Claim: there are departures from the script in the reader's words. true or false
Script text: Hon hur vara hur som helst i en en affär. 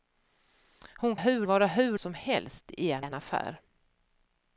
false